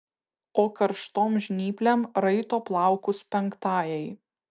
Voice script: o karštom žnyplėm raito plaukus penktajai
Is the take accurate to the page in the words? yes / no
yes